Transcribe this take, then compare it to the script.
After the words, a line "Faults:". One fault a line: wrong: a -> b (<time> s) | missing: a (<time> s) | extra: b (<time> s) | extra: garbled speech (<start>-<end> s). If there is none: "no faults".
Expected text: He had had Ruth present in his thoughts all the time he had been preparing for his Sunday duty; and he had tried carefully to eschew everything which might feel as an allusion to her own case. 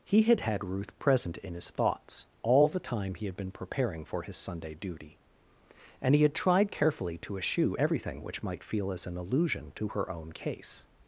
He had had Ruth present in his thoughts all the time he had been preparing for his Sunday duty; and he had tried carefully to eschew everything which might feel as an allusion to her own case.
Faults:
no faults